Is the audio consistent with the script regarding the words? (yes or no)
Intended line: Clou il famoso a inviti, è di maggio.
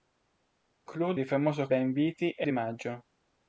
yes